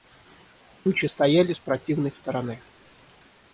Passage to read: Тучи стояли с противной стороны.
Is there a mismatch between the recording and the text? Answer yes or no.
no